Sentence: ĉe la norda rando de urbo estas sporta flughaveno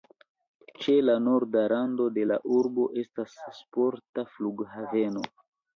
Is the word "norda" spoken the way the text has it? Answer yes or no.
yes